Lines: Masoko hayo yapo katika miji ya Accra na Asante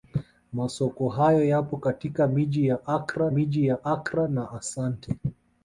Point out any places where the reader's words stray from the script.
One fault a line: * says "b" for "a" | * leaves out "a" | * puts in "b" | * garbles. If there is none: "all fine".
* puts in "miji ya Accra"